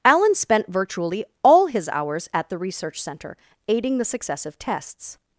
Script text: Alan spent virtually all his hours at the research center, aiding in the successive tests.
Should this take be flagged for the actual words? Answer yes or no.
yes